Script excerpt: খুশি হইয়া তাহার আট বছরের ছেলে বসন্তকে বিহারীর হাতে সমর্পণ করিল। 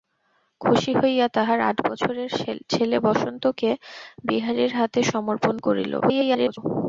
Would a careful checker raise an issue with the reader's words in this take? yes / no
yes